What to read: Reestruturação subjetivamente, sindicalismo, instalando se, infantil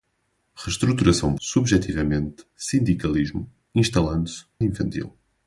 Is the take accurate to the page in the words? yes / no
yes